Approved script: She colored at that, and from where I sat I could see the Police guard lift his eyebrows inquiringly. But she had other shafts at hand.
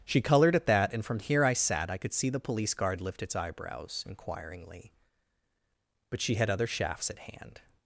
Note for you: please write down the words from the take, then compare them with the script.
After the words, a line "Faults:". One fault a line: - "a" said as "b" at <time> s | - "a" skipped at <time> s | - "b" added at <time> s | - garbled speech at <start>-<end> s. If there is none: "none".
She colored at that, and from here I sat I could see the Police guard lift its eyebrows inquiringly. But she had other shafts at hand.
Faults:
- "where" said as "here" at 1.2 s
- "his" said as "its" at 3.2 s